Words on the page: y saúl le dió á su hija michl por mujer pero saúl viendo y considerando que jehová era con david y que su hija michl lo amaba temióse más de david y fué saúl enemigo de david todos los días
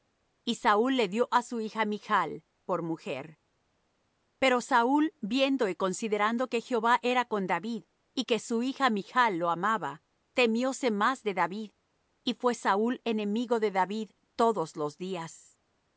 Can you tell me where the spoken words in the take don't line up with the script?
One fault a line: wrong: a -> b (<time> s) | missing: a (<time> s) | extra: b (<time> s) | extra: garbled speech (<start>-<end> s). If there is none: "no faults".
no faults